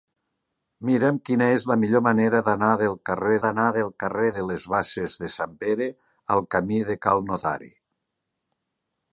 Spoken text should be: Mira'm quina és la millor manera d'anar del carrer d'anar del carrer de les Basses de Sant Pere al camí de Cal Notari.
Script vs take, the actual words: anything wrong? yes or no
no